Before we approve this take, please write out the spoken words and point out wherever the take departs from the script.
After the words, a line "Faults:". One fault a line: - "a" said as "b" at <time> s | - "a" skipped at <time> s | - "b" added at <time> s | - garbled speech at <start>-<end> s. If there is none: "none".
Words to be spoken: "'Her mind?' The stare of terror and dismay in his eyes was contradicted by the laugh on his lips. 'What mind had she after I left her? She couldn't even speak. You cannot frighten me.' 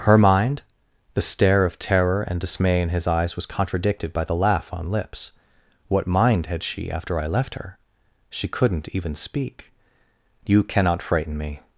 "'Her mind?' The stare of terror and dismay in his eyes was contradicted by the laugh on lips. 'What mind had she after I left her? She couldn't even speak. You cannot frighten me.'
Faults:
- "his" skipped at 4.9 s